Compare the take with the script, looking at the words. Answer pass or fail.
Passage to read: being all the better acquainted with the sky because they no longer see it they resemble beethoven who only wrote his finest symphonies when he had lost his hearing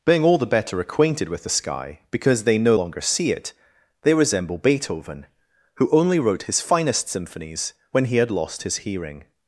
pass